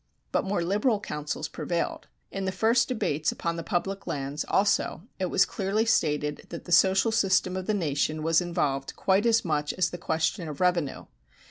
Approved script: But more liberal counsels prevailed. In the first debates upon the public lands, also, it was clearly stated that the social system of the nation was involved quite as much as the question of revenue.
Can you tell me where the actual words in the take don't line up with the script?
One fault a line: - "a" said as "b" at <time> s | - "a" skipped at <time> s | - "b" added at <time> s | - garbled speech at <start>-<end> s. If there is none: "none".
none